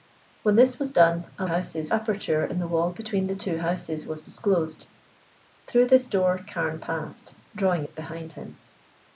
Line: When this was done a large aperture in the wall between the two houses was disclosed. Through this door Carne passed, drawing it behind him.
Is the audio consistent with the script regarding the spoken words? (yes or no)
no